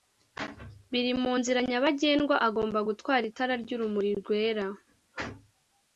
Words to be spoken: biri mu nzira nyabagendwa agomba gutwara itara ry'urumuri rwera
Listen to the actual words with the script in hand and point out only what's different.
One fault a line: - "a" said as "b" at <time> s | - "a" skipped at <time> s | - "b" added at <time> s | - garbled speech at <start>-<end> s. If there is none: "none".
none